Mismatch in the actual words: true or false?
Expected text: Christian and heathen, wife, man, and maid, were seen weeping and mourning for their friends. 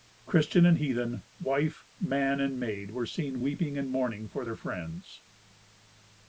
false